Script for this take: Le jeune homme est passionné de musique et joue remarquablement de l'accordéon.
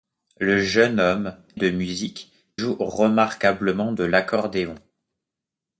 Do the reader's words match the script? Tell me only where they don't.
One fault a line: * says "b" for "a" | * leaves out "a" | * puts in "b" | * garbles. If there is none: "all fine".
* leaves out "est passionné"
* leaves out "et"